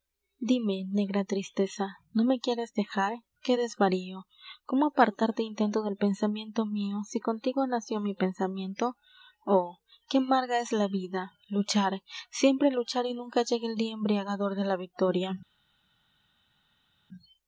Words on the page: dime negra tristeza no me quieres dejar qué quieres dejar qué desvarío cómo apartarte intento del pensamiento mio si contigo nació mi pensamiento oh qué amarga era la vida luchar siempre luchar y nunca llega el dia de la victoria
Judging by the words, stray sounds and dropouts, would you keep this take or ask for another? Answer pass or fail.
fail